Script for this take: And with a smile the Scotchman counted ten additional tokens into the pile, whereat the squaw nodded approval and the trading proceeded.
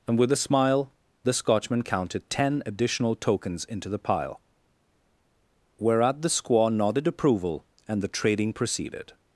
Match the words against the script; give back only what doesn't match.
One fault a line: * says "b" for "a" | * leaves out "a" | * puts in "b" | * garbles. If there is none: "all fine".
all fine